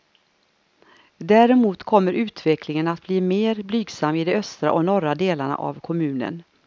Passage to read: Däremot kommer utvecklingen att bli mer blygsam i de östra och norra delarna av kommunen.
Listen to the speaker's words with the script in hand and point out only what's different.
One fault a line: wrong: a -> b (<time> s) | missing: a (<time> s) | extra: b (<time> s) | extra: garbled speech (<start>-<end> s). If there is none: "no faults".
no faults